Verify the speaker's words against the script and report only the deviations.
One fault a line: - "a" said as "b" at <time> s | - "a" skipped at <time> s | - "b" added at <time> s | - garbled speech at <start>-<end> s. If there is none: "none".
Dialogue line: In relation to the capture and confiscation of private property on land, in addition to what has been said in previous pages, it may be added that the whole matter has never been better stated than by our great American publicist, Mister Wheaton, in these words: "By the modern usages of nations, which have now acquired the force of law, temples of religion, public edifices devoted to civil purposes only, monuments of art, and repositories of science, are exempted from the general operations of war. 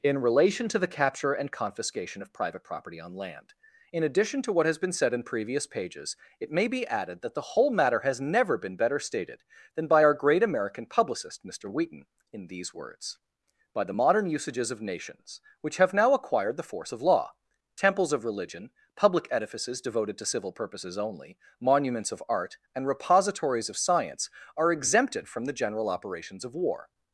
none